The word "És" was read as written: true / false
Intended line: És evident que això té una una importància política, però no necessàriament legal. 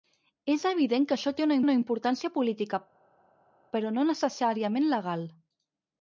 true